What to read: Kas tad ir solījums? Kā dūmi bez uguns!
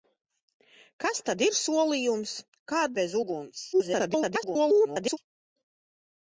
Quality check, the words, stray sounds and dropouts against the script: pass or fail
fail